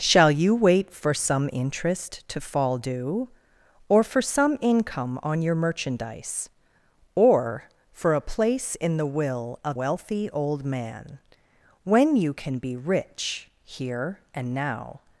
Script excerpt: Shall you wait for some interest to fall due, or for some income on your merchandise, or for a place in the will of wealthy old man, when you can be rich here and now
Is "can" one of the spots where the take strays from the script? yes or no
no